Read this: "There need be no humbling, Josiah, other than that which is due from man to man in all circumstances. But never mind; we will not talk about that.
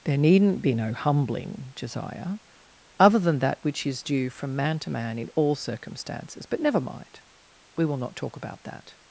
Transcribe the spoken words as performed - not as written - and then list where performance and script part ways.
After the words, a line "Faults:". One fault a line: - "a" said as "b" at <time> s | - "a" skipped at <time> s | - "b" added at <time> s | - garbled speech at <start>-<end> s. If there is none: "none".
"There needn't be no humbling, Josiah, other than that which is due from man to man in all circumstances. But never mind; we will not talk about that.
Faults:
- "need" said as "needn't" at 0.2 s